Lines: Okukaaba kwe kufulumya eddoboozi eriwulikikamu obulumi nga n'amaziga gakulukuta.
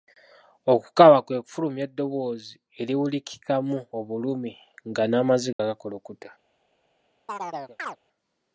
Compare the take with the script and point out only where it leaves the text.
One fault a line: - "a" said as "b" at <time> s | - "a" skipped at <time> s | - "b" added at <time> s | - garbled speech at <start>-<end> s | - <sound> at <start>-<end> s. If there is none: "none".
- dropout at 5.5-5.6 s
- chirp at 7.3-8.0 s